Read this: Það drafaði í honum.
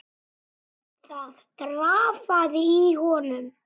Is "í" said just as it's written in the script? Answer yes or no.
yes